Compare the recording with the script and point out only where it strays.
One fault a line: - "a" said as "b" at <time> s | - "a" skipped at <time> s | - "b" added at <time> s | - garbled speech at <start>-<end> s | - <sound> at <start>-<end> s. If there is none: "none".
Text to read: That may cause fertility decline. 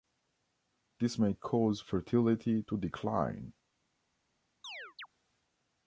- "That" said as "This" at 1.0 s
- "to" added at 2.7 s
- chirp at 4.6-5.1 s